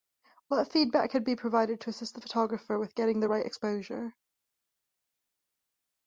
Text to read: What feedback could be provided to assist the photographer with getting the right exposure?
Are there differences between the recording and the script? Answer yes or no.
no